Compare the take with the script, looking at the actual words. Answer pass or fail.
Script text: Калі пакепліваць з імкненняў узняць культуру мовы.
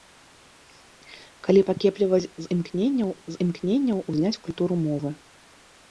fail